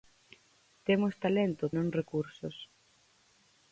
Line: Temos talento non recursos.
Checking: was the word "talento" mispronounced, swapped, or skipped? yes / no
no